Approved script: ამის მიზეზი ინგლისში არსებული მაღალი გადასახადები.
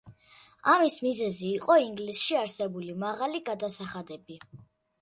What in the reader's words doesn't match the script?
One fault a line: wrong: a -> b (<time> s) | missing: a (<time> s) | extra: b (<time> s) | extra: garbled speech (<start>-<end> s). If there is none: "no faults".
extra: იყო (1.6 s)